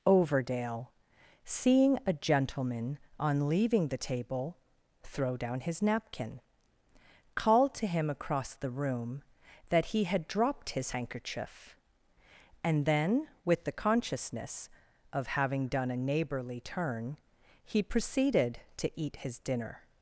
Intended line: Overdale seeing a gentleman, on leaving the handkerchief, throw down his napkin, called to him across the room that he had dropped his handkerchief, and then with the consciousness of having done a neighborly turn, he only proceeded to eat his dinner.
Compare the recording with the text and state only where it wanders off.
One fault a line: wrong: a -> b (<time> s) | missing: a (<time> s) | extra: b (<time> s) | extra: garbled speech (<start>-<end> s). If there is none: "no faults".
wrong: handkerchief -> table (4.0 s)
missing: only (17.8 s)